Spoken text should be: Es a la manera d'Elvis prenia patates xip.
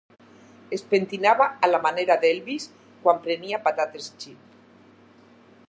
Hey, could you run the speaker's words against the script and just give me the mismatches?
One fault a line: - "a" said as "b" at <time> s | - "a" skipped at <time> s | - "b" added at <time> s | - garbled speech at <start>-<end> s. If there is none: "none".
- "pentinava" added at 0.9 s
- "quan" added at 3.0 s